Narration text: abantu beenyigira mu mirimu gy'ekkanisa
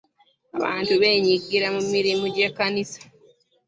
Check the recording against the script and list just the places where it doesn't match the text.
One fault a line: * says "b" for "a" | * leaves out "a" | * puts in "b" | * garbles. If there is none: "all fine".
all fine